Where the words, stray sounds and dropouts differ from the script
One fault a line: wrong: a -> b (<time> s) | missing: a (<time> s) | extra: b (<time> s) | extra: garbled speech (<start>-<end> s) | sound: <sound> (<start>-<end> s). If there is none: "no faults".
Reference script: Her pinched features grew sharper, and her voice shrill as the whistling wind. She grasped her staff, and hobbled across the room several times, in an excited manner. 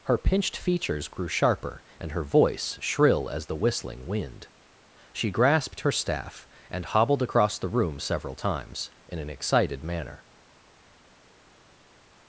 no faults